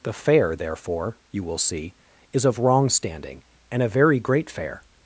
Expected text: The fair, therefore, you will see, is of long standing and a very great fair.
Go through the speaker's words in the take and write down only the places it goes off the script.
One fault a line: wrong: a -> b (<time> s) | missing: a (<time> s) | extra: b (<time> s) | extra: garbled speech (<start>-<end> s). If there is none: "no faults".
wrong: long -> wrong (2.6 s)